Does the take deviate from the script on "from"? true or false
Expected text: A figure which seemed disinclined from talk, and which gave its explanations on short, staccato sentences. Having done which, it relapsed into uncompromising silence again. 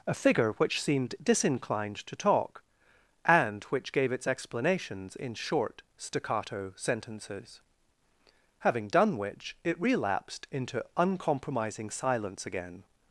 true